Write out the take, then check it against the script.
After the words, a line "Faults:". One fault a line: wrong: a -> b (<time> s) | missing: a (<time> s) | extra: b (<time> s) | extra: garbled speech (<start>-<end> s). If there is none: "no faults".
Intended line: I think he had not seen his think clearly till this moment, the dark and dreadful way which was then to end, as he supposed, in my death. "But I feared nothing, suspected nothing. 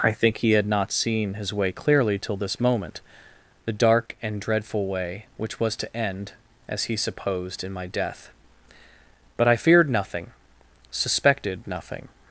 I think he had not seen his way clearly till this moment, the dark and dreadful way which was to end, as he supposed, in my death. "But I feared nothing, suspected nothing.
Faults:
wrong: think -> way (1.5 s)
missing: then (5.8 s)